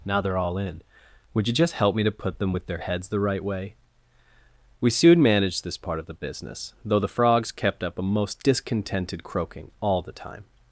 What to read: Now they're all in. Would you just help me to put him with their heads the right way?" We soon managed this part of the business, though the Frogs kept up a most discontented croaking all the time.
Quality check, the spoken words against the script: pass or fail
fail